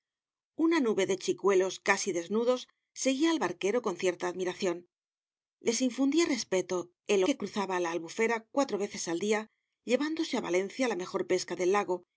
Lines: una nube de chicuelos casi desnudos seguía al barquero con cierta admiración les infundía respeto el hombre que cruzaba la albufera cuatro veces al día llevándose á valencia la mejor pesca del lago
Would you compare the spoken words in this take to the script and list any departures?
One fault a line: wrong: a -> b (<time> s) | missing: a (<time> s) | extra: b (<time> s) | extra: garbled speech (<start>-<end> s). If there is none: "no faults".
missing: hombre (7.2 s)